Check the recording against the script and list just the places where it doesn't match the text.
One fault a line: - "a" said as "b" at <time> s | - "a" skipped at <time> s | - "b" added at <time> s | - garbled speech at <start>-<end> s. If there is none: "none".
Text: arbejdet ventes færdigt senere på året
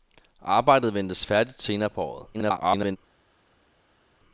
- garbled speech at 2.3-3.0 s